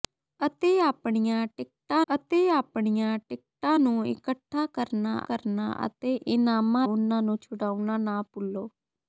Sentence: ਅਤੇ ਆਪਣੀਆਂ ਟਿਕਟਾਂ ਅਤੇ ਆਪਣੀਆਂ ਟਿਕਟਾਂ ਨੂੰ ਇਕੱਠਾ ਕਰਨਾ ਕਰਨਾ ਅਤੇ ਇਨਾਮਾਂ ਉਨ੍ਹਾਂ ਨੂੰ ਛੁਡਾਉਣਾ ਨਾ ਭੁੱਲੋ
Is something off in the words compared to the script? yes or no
no